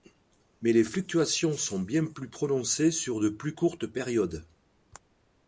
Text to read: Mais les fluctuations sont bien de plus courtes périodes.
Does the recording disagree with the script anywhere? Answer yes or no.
yes